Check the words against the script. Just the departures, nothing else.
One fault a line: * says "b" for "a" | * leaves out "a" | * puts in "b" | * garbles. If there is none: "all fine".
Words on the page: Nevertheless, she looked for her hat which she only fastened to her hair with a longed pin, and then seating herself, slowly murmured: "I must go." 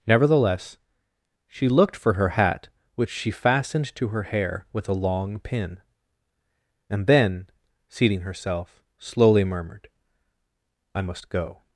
* leaves out "only"
* says "long" for "longed"